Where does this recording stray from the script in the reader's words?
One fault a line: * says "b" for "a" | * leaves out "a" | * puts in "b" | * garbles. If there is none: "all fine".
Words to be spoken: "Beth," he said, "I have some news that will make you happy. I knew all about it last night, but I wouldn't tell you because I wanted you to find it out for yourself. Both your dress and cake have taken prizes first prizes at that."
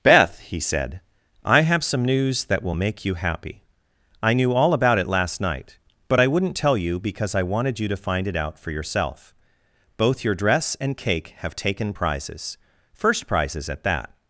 all fine